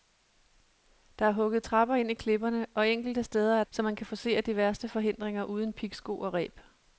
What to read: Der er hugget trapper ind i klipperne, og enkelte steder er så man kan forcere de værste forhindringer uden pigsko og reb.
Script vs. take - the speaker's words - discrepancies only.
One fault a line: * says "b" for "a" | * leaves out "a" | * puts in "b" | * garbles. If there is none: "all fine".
all fine